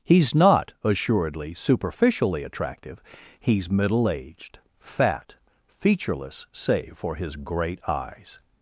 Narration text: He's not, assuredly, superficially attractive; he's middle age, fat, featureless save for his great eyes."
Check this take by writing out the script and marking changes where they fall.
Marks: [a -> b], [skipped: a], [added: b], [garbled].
He's not, assuredly, superficially attractive; he's middle [age, -> aged] fat, featureless save for his great eyes."